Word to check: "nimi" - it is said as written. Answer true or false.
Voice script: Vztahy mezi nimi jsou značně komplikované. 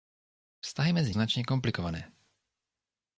false